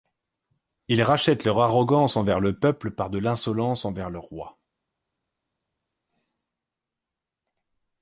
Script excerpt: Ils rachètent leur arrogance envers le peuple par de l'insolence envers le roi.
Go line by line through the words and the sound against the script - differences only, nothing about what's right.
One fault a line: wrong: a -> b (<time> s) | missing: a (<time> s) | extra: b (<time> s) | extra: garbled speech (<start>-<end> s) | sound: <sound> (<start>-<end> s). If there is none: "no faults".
no faults